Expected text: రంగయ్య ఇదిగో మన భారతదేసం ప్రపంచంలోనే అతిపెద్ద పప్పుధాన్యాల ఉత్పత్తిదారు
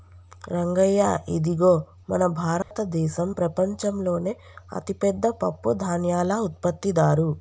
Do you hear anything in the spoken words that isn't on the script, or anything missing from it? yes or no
no